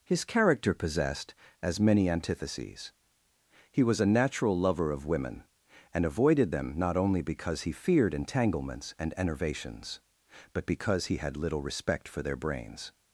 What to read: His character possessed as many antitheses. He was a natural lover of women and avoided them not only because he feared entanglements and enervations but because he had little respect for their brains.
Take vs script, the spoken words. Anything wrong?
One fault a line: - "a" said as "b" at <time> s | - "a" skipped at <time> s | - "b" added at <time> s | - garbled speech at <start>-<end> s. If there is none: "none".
none